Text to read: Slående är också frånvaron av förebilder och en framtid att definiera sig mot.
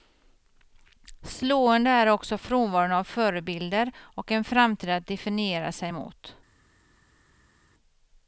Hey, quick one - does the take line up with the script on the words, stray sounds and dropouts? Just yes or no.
yes